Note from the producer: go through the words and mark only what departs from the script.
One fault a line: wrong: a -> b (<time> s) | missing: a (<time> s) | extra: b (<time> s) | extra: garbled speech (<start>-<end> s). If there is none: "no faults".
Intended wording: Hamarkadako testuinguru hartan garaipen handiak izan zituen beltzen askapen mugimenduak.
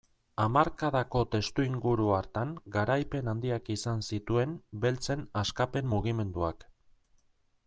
no faults